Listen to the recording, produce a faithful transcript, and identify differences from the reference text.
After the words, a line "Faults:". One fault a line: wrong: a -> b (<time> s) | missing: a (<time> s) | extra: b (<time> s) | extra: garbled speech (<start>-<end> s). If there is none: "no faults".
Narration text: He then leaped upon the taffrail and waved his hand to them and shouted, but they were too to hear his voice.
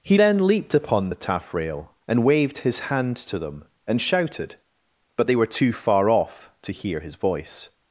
He then leaped upon the taffrail and waved his hand to them and shouted, but they were too far off to hear his voice.
Faults:
extra: far off (5.7 s)